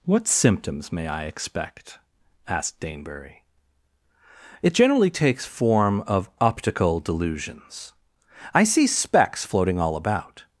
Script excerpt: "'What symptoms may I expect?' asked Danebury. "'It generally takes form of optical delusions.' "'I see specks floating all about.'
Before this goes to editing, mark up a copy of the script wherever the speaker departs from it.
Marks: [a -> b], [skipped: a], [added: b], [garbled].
"'What symptoms may I expect?' asked Danebury. "'It generally takes form of optical delusions.' "'I see specks floating all about.'